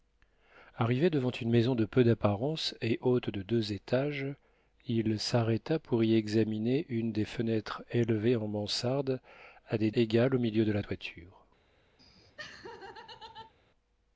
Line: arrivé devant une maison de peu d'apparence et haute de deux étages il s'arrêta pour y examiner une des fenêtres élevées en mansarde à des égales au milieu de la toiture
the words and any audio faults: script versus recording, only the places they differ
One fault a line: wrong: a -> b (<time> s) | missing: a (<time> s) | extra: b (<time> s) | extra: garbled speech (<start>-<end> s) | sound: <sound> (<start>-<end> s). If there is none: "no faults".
sound: laugh (12.0-13.5 s)